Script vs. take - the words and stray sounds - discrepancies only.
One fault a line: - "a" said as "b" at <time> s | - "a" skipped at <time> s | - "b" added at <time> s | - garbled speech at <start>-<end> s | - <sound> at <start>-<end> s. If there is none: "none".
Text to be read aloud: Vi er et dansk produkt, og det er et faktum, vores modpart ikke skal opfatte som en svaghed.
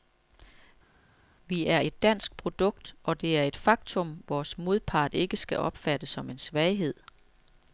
none